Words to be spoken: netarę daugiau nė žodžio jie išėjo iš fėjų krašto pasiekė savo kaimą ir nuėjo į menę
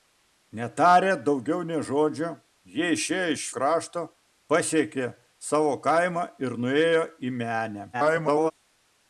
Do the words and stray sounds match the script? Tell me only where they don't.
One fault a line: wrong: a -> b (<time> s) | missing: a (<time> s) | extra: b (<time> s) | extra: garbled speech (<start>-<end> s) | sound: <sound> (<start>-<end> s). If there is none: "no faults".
missing: fėjų (3.4 s)
extra: garbled speech (7.9-8.5 s)